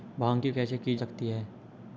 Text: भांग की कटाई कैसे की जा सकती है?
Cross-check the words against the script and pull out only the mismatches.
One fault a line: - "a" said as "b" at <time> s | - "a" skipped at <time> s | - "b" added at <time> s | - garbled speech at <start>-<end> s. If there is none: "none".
- "कटाई" skipped at 0.5 s
- "जा" skipped at 1.0 s